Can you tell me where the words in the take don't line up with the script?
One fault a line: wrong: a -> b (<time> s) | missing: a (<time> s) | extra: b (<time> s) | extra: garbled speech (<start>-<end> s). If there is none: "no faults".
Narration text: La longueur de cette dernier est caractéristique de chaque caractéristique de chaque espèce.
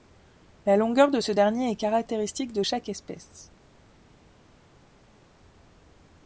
wrong: cette -> ce (1.2 s)
missing: caractéristique de chaque (2.9 s)